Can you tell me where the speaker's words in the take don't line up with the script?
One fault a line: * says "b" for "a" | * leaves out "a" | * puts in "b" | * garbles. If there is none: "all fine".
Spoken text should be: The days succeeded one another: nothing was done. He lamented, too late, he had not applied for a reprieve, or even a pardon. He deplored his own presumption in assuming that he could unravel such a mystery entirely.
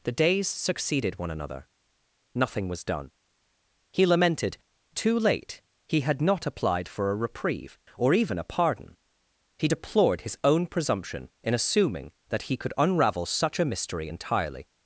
all fine